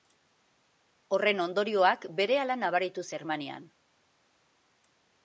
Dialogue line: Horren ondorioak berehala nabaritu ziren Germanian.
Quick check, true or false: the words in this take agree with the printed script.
false